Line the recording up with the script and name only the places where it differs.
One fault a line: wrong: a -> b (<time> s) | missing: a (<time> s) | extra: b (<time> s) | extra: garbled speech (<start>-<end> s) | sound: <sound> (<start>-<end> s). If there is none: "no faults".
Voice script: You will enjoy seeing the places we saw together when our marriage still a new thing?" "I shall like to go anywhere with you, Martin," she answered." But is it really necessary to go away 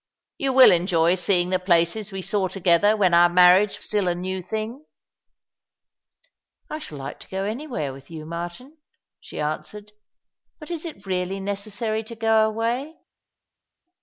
no faults